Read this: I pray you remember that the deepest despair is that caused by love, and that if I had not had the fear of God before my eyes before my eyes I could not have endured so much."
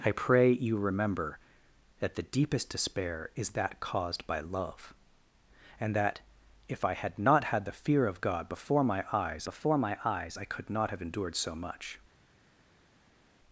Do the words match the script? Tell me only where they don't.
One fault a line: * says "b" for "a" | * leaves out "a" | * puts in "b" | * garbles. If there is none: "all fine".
all fine